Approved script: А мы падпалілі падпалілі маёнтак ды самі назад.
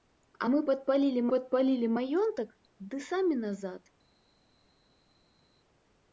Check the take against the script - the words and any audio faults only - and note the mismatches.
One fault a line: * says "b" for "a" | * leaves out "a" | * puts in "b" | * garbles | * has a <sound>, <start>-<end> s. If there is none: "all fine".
all fine